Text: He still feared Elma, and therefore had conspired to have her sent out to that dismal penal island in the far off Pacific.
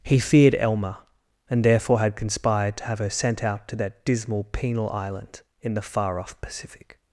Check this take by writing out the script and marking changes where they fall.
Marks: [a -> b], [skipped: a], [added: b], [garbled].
He [skipped: still] feared Elma, and therefore had conspired to have her sent out to that dismal penal island in the far off Pacific.